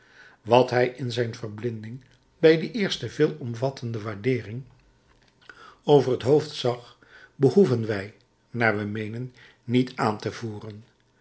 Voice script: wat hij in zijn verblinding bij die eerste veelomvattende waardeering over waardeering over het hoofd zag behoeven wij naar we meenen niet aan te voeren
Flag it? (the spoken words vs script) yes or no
yes